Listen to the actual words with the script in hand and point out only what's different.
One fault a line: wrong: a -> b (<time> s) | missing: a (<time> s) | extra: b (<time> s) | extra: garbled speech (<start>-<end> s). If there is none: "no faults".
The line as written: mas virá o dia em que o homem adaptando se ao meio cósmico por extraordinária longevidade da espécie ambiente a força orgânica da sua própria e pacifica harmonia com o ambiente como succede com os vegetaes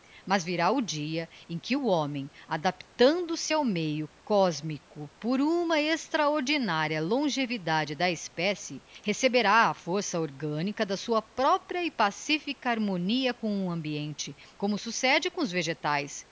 extra: uma (5.4 s)
wrong: ambiente -> receberá (9.0 s)